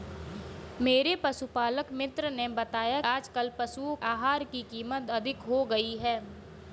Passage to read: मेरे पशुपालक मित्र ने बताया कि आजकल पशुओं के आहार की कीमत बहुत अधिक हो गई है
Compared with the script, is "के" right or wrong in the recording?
wrong